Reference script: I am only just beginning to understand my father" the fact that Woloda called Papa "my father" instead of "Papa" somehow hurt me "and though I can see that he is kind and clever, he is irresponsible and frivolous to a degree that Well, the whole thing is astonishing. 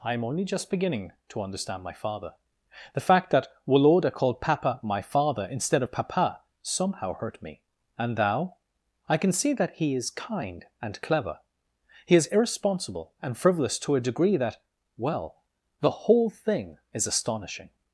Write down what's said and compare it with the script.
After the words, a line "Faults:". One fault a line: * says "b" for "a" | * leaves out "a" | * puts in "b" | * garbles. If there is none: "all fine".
I am only just beginning to understand my father" the fact that Woloda called Papa "my father" instead of "Papa" somehow hurt me "and thou I can see that he is kind and clever, he is irresponsible and frivolous to a degree that Well, the whole thing is astonishing.
Faults:
* says "thou" for "though"